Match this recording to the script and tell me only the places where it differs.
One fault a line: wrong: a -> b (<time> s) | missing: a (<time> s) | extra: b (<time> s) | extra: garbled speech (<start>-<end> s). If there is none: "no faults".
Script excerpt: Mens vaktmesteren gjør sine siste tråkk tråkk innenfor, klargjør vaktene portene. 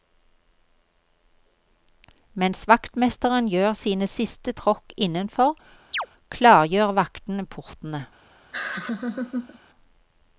missing: tråkk (4.9 s)